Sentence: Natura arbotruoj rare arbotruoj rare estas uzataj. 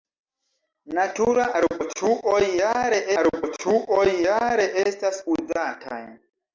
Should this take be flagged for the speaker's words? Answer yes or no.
no